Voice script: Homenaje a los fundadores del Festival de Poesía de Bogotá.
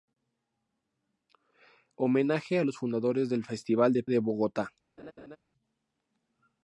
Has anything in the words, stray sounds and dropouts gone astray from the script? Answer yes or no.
yes